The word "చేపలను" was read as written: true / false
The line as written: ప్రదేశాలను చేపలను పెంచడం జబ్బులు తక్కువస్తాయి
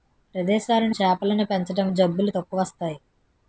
true